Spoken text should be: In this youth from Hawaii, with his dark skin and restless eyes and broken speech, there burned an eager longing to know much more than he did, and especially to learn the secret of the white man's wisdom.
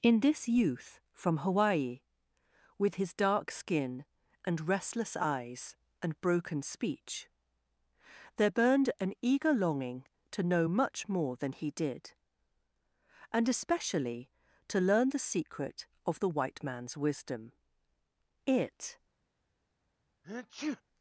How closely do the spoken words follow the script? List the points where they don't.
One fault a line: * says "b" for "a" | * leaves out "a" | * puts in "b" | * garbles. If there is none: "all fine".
* puts in "It"